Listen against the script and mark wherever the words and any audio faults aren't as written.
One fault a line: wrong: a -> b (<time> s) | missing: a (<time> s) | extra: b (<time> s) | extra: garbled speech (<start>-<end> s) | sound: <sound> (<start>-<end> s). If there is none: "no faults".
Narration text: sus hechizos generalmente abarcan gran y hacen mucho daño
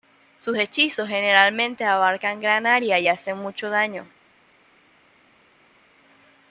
extra: área (2.7 s)